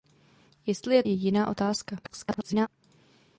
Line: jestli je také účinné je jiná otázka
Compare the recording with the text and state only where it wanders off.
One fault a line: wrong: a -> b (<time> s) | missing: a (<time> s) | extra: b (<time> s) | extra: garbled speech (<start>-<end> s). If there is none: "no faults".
missing: také účinné (1.0 s)
extra: garbled speech (2.0-2.7 s)